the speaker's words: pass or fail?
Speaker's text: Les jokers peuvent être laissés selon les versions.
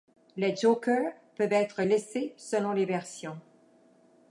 pass